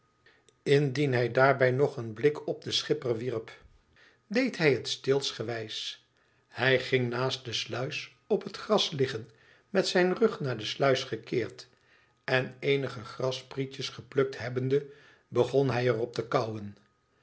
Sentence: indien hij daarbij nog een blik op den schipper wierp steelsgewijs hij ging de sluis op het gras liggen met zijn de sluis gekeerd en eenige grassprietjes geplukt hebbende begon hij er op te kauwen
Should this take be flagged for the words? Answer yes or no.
yes